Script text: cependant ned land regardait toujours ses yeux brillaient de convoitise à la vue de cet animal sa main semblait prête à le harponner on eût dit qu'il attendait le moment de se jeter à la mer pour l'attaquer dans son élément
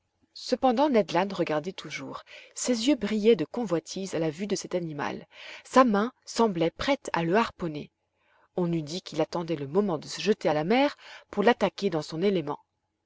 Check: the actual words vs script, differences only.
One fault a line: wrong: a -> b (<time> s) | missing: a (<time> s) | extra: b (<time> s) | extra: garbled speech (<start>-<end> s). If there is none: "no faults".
no faults